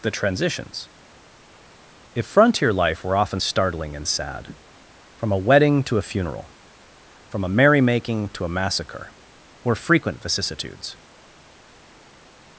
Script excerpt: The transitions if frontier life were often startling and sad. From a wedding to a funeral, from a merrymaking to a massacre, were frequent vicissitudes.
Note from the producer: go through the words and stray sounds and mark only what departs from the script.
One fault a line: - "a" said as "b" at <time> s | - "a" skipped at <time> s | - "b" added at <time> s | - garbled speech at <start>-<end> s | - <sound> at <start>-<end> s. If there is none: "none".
none